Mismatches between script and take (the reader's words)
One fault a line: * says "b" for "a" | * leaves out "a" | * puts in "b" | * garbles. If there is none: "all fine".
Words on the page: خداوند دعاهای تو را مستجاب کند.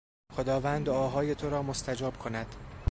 all fine